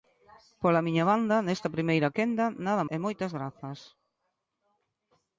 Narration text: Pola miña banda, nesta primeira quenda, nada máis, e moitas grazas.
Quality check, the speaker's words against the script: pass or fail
fail